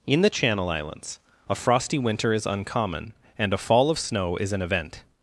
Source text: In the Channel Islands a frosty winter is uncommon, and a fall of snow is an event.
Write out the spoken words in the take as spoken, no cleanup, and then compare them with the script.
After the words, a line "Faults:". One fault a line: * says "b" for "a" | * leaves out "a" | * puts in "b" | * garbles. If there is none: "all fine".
In the Channel Islands a frosty winter is uncommon, and a fall of snow is an event.
Faults:
all fine